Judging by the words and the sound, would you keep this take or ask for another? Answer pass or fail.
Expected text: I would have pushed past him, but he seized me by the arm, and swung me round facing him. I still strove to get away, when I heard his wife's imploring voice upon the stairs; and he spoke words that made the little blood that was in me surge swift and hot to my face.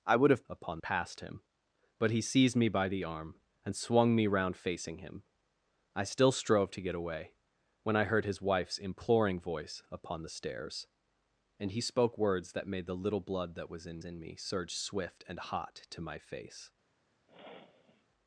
fail